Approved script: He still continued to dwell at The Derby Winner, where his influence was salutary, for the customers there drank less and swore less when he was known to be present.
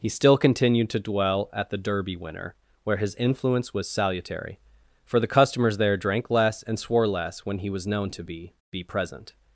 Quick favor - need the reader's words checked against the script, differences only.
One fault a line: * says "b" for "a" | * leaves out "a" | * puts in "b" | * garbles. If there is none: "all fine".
* puts in "be"